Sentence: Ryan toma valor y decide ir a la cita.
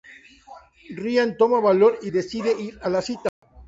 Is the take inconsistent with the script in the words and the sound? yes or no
yes